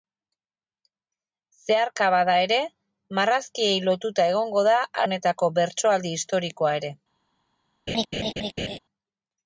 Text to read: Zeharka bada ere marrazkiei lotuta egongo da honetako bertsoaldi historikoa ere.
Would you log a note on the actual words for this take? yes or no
no